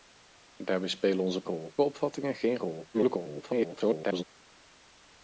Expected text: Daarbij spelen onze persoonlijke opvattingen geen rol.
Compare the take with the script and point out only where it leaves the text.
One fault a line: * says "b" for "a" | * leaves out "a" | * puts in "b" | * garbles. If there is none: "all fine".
* says "rol" for "persoonlijke"
* garbles